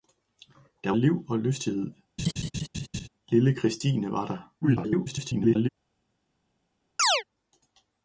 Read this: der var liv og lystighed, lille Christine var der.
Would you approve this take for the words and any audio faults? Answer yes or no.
no